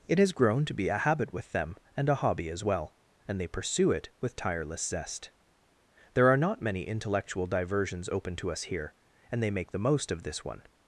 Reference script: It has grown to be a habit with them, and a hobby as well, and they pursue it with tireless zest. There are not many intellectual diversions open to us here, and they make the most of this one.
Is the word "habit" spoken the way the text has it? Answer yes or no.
yes